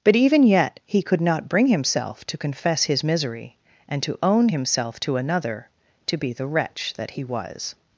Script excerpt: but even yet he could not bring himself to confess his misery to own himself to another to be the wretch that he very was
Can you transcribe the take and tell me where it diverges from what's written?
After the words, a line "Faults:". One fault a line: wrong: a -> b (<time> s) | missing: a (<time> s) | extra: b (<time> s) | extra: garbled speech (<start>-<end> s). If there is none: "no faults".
but even yet he could not bring himself to confess his misery and to own himself to another to be the wretch that he was
Faults:
extra: and (3.9 s)
missing: very (7.2 s)